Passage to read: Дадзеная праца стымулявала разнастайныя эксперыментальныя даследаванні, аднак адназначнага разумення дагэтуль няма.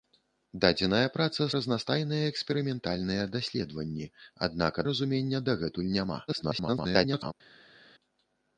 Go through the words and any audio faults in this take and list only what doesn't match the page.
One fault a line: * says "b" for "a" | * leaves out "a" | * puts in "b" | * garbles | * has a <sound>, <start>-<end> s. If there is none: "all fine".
* leaves out "стымулявала"
* leaves out "адназначнага"
* garbles